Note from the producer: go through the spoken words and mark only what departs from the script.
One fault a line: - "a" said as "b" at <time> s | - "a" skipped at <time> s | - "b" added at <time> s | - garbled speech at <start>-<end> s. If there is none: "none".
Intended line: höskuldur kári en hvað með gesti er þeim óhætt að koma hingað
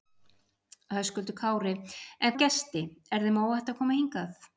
- "hvað" skipped at 2.3 s